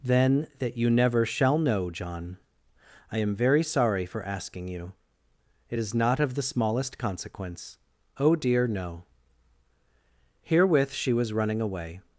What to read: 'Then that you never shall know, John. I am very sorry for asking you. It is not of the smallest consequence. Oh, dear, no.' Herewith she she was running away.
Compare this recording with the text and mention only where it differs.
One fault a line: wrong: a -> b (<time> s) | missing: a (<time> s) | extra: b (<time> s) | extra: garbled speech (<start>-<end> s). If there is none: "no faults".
missing: she (11.1 s)